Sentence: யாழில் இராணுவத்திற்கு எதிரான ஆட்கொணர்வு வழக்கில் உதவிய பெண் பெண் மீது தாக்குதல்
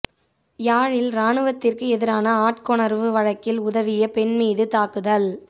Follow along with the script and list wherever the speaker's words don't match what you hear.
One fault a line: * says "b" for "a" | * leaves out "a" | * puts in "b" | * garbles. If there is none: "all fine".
* leaves out "பெண்"